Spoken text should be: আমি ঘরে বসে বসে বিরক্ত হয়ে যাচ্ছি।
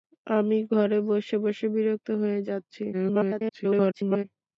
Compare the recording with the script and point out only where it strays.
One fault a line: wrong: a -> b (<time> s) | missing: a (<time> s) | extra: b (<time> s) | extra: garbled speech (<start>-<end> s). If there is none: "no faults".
extra: garbled speech (2.9-4.2 s)